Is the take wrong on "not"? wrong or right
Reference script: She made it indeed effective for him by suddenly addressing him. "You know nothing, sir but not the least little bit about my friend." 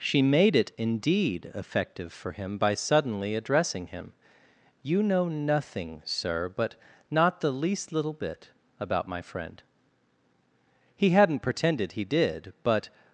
right